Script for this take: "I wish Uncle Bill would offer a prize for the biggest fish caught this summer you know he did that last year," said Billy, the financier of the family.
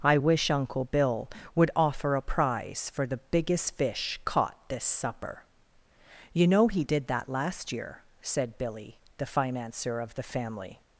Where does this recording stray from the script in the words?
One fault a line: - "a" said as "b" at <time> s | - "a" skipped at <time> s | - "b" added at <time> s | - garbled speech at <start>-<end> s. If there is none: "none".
- "summer" said as "supper" at 4.8 s